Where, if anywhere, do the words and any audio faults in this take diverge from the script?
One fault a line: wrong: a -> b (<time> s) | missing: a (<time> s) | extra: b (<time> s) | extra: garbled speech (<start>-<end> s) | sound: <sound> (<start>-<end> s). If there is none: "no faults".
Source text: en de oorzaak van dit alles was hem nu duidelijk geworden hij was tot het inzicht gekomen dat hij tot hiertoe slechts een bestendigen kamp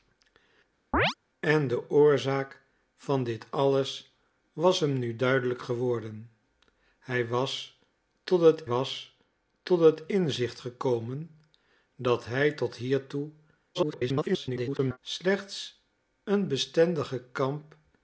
sound: chirp (0.9-1.1 s)
extra: was tot het (8.7 s)
extra: garbled speech (13.7-15.0 s)